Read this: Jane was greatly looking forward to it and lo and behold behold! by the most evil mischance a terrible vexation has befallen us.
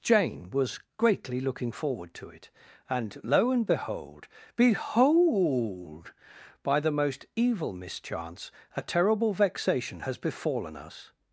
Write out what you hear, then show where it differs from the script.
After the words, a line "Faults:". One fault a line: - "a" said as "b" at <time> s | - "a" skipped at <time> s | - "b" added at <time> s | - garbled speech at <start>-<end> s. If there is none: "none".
Jane was greatly looking forward to it and lo and behold behold! by the most evil mischance a terrible vexation has befallen us.
Faults:
none